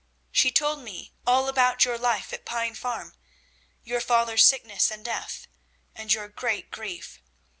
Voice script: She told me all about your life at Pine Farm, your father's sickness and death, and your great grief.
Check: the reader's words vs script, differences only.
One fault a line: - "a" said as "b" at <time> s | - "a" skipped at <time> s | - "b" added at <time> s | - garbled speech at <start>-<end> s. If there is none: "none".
none